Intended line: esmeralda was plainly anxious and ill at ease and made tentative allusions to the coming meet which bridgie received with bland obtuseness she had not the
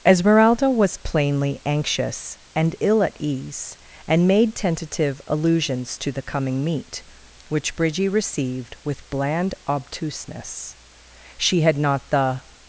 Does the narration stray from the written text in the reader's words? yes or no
no